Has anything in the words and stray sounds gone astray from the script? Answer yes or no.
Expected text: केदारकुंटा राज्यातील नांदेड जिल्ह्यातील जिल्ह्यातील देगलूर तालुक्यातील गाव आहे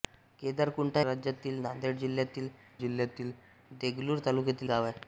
no